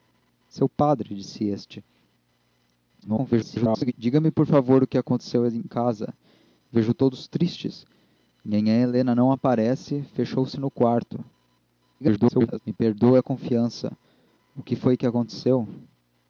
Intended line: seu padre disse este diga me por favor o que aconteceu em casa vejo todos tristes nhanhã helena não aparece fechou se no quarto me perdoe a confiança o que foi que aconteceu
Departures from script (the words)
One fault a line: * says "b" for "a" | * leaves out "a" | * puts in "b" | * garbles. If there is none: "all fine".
* garbles
* garbles